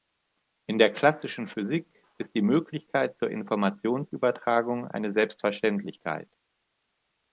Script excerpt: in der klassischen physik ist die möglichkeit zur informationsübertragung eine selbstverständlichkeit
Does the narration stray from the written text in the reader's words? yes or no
no